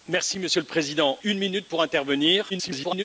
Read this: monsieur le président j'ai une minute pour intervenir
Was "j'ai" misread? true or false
true